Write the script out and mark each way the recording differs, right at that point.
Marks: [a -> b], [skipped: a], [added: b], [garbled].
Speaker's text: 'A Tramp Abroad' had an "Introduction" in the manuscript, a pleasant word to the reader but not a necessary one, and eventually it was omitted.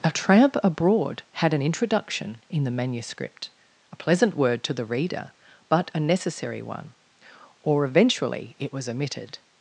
'A Tramp Abroad' had an "Introduction" in the manuscript, a pleasant word to the reader but [skipped: not] a necessary one, [and -> or] eventually it was omitted.